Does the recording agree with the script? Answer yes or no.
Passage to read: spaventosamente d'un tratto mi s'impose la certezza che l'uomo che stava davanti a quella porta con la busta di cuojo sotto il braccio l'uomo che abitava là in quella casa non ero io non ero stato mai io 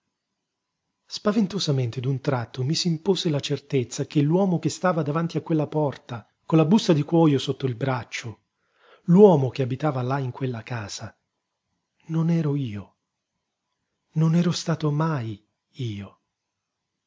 yes